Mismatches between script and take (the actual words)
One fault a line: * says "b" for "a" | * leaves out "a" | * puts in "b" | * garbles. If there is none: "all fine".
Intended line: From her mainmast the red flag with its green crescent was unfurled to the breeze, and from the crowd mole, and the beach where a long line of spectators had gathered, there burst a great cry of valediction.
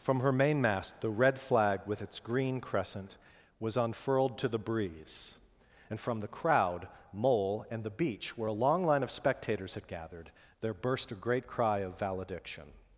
all fine